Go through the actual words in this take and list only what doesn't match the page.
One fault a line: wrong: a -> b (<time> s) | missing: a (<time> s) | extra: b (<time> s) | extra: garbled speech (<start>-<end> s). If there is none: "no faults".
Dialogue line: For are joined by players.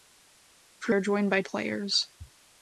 no faults